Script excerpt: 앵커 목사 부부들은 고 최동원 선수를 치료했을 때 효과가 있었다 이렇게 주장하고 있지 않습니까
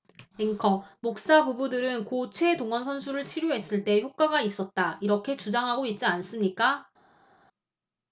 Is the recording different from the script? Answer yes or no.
no